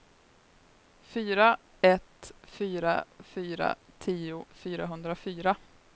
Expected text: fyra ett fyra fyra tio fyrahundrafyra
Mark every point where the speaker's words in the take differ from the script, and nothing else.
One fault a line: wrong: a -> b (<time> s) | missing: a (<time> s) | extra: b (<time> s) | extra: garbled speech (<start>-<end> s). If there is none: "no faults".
no faults